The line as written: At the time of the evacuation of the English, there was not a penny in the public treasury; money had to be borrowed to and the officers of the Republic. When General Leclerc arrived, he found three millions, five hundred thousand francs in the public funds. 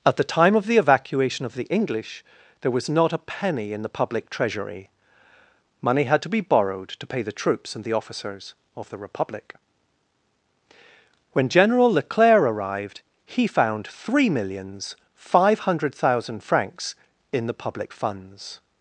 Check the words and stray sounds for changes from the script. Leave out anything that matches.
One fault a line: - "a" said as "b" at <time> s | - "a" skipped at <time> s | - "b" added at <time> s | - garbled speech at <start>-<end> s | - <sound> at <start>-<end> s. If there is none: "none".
- "pay the troops" added at 7.1 s